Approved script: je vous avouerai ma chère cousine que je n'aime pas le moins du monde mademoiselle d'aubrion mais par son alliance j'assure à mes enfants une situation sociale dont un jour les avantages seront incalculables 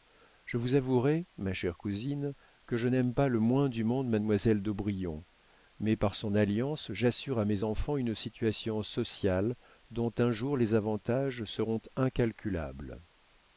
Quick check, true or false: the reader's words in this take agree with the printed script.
true